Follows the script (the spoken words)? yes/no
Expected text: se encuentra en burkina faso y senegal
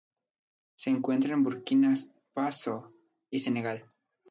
yes